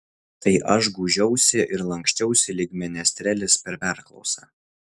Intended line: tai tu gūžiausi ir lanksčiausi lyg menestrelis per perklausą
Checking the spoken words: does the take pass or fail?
fail